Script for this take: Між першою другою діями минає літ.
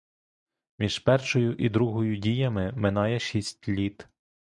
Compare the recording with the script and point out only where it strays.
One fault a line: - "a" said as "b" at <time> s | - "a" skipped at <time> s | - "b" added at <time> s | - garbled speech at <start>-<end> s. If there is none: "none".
- "і" added at 1.6 s
- "шість" added at 3.2 s